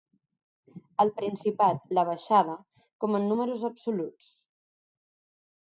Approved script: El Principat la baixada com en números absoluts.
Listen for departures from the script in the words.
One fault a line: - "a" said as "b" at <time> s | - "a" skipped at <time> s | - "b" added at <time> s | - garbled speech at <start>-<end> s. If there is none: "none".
none